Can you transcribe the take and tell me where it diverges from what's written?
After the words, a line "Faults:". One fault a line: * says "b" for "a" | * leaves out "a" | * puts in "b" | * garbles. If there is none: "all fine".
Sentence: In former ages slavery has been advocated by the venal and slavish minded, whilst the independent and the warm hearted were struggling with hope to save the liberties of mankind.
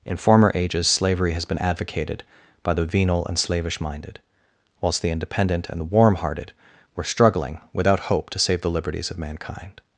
In former ages slavery has been advocated by the venal and slavish minded, whilst the independent and the warm hearted were struggling without hope to save the liberties of mankind.
Faults:
* says "without" for "with"